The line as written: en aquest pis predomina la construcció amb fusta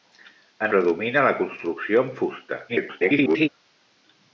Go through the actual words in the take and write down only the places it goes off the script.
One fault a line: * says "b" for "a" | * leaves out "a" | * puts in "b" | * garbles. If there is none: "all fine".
* leaves out "aquest pis"
* garbles